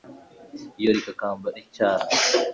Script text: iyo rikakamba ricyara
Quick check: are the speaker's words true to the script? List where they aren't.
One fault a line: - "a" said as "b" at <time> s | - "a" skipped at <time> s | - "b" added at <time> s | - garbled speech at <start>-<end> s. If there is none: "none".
none